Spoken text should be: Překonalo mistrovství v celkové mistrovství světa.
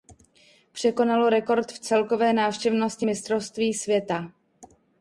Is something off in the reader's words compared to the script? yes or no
yes